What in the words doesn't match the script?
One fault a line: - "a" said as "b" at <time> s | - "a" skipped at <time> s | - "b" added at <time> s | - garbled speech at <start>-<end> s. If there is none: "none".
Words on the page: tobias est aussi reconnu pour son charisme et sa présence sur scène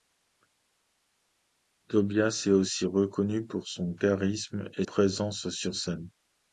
- "sa" skipped at 4.8 s